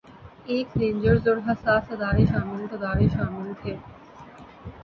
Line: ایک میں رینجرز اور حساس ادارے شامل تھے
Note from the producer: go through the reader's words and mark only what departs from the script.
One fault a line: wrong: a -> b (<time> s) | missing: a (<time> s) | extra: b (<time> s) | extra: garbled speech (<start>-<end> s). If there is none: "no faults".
missing: میں (0.7 s)
extra: ادارے شامل (2.7 s)